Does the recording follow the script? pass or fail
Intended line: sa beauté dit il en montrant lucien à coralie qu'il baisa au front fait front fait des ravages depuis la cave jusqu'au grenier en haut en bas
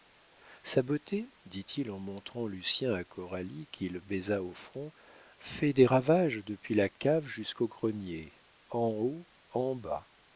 fail